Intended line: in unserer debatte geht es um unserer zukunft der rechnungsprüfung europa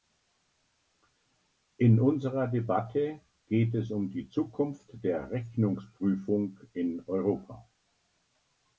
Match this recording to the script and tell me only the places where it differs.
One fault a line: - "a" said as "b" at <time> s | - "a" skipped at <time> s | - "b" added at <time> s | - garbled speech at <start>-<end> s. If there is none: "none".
- "unserer" said as "die" at 4.1 s
- "in" added at 6.7 s